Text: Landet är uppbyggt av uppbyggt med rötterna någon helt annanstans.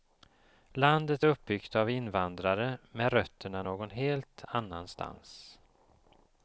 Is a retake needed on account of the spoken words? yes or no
yes